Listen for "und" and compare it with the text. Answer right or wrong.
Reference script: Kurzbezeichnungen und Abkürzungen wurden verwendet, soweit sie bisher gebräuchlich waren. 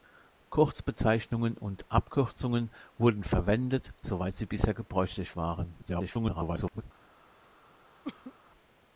right